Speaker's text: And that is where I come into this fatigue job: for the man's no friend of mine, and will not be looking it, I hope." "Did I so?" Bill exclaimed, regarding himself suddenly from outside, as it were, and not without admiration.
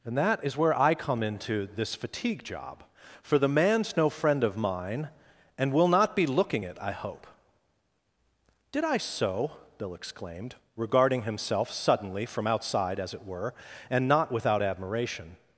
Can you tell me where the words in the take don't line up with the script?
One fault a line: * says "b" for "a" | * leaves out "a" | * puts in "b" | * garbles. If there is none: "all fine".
all fine